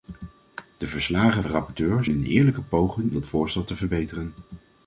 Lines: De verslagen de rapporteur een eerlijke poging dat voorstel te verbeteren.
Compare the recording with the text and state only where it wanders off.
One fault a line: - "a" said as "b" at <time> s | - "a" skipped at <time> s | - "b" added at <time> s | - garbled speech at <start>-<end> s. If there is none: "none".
none